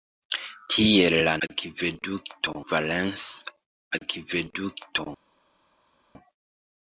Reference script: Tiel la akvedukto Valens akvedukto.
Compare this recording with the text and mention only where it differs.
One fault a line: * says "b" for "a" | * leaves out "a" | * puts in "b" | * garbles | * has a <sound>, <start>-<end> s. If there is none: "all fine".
all fine